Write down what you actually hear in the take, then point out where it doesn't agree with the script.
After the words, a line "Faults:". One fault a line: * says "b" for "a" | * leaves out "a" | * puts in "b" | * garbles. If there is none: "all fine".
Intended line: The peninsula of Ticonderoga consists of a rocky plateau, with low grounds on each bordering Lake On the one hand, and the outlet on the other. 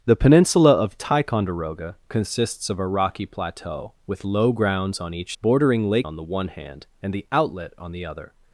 The peninsula of Ticonderoga consists of a rocky plateau, with low grounds on each bordering Lake On the one hand, and the outlet on the other.
Faults:
all fine